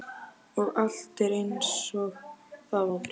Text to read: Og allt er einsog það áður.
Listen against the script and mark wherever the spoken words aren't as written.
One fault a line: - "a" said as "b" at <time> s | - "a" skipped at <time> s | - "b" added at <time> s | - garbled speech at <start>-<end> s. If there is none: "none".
none